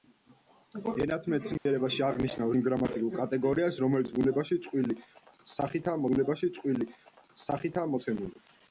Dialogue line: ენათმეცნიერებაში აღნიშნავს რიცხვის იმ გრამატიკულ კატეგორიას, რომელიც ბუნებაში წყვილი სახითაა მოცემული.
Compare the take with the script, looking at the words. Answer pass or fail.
fail